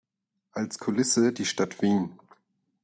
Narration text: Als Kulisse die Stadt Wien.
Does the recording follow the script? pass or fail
pass